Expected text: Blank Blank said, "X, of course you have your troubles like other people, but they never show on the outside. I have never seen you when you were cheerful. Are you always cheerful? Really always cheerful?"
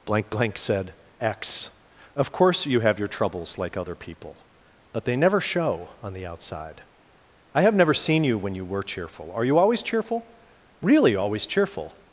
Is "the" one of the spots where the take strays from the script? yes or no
no